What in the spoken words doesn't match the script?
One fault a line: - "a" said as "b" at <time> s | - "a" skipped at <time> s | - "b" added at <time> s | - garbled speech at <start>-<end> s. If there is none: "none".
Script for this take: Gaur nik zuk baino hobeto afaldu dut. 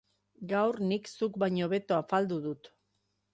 none